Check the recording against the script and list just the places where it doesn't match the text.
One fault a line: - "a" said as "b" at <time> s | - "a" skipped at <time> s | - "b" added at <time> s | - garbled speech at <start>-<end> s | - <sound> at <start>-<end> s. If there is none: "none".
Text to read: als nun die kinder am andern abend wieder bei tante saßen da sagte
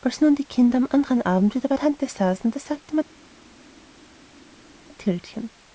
none